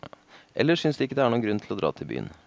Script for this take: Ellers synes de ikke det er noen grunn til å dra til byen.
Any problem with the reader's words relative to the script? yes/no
no